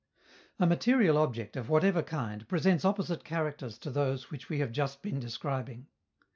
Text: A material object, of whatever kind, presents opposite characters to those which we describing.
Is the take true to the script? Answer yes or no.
no